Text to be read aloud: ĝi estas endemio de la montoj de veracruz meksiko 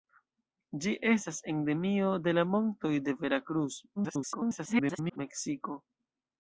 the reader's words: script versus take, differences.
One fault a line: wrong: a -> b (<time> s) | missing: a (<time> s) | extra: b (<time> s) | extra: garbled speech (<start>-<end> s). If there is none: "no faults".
extra: garbled speech (4.0-5.2 s)